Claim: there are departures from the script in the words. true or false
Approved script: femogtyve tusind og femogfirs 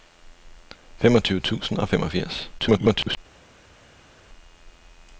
true